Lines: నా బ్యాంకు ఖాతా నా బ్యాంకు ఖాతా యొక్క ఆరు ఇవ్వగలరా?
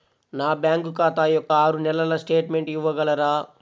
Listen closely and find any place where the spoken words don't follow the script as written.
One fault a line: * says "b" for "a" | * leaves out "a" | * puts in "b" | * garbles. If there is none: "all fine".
* says "యొక్క ఆరు నెలల స్టేట్మెంట్" for "నా బ్యాంకు ఖాతా యొక్క ఆరు"